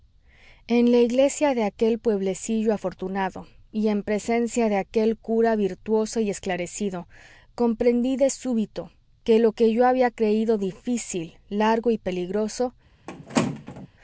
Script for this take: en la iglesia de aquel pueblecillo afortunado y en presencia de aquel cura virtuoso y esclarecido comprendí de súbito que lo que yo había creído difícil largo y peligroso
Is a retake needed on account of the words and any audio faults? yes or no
yes